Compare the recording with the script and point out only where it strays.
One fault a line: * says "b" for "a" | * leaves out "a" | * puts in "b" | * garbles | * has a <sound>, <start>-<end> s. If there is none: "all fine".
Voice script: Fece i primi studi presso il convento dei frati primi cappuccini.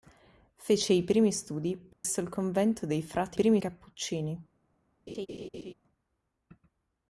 * has a dropout, 1.9-2.0 s
* has a laugh, 5.1-5.7 s